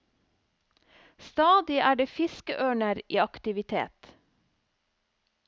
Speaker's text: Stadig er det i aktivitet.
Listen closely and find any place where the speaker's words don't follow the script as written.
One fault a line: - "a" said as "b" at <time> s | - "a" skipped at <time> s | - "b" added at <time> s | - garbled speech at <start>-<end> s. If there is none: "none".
- "fiskeørner" added at 2.1 s